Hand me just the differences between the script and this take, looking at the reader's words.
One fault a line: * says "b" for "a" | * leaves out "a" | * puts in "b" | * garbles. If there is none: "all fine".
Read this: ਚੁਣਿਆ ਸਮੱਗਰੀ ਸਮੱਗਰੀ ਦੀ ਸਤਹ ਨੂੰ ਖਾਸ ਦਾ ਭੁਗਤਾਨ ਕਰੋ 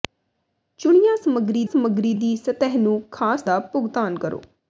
all fine